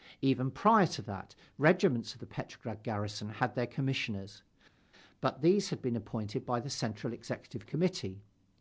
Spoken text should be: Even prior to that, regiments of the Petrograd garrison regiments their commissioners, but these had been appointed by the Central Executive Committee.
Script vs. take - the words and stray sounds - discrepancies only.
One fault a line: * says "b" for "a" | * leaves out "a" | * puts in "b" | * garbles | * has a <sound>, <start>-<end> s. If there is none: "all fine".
* says "had" for "regiments"